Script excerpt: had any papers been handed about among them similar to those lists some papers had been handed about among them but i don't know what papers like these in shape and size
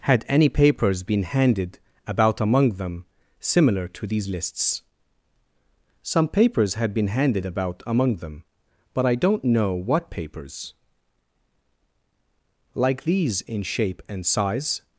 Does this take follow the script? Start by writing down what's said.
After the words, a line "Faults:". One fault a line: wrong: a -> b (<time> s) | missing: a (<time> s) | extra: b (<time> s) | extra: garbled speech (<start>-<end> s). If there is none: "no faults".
had any papers been handed about among them similar to these lists some papers had been handed about among them but i don't know what papers like these in shape and size
Faults:
wrong: those -> these (4.1 s)